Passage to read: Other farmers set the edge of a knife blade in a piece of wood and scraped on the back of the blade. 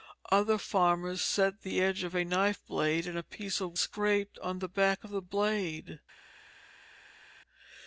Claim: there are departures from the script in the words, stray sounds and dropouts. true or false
true